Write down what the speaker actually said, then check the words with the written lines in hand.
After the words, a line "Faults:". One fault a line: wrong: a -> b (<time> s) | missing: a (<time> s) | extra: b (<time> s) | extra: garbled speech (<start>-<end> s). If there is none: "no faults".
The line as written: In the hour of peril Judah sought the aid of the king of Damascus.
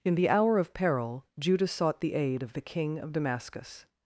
In the hour of peril Judah sought the aid of the king of Damascus.
Faults:
no faults